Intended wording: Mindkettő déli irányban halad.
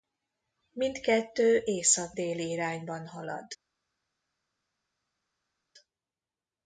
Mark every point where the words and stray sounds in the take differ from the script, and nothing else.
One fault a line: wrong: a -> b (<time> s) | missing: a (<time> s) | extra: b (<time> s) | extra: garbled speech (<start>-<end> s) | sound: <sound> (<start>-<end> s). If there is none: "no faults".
extra: észak (1.6 s)